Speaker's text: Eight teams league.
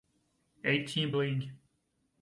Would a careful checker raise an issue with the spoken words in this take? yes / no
no